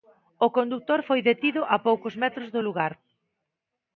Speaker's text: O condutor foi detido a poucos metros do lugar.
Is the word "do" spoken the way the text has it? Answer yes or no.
yes